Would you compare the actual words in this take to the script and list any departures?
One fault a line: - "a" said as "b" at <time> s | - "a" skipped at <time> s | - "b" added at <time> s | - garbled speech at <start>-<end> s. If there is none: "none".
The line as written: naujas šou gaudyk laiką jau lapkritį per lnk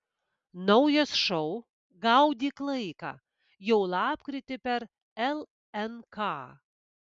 none